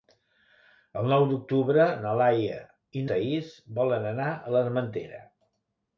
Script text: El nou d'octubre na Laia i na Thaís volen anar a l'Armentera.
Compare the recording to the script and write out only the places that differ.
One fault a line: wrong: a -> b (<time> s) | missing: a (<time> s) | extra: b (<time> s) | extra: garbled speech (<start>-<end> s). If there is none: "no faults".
missing: na (3.0 s)